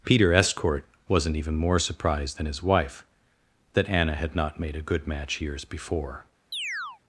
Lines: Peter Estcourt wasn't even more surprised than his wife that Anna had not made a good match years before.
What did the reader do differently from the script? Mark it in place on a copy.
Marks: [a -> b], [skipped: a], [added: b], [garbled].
Peter Estcourt wasn't even more surprised than his wife that Anna had not made a good match years before.